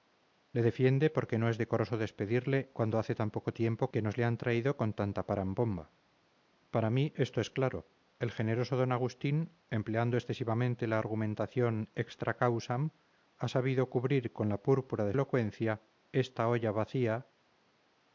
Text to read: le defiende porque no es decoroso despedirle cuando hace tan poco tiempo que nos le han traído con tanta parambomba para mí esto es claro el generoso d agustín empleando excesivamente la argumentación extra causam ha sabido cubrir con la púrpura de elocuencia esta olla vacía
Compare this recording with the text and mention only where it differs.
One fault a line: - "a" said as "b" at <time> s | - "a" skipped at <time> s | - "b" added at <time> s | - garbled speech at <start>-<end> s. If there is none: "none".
none